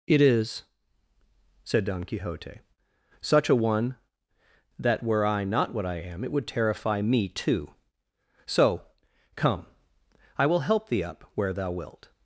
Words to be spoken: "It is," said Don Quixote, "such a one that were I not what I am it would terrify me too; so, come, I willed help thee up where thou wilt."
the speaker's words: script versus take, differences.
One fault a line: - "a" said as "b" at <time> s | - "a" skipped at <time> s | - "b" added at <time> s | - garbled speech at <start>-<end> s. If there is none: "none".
- "willed" said as "will" at 10.4 s